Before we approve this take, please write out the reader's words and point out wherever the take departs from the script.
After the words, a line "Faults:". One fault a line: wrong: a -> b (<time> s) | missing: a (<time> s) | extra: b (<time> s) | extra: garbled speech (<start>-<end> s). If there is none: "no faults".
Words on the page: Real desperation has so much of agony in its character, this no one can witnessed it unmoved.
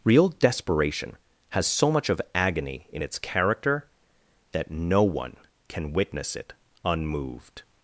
Real desperation has so much of agony in its character, that no one can witness it unmoved.
Faults:
wrong: this -> that (4.5 s)
wrong: witnessed -> witness (5.9 s)